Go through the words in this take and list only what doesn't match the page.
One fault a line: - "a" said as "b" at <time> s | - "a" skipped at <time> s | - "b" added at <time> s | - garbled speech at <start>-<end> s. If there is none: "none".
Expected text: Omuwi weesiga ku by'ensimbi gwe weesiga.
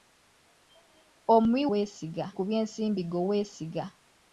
none